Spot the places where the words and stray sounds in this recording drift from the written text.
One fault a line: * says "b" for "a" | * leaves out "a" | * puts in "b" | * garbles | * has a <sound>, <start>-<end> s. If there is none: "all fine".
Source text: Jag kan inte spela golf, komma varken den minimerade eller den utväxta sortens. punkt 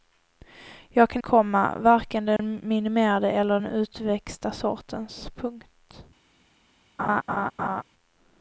* leaves out "inte spela golf"
* has a dropout, 2.4-2.4 s
* has a laugh, 7.0-7.8 s